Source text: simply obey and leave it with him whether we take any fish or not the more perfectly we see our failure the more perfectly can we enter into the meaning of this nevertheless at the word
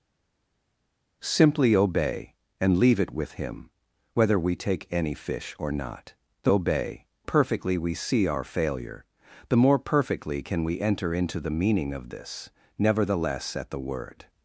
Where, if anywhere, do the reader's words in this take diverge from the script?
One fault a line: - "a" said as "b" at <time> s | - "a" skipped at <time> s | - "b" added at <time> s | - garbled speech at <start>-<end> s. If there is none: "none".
- "more" said as "obey" at 6.5 s